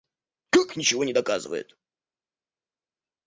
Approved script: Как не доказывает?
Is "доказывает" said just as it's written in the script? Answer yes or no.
yes